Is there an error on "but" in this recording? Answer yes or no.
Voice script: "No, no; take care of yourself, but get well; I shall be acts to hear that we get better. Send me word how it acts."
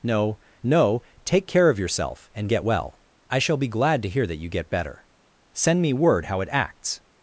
yes